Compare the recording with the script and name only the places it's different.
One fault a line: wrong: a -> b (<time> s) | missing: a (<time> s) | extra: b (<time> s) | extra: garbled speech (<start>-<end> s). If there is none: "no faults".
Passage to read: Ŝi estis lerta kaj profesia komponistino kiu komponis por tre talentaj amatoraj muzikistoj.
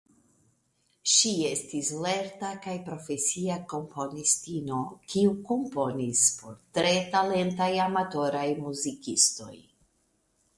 no faults